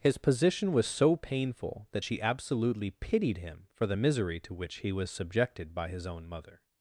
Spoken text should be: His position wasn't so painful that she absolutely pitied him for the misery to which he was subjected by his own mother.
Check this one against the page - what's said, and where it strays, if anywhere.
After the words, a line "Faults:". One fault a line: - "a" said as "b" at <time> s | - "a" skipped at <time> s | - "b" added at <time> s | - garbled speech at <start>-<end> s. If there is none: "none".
His position was so painful that she absolutely pitied him for the misery to which he was subjected by his own mother.
Faults:
- "wasn't" said as "was" at 0.7 s